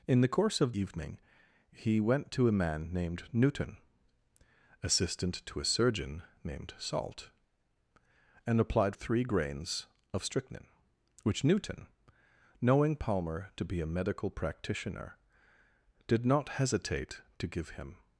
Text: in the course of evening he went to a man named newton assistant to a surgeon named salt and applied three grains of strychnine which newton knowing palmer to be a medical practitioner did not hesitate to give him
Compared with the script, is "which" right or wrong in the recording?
right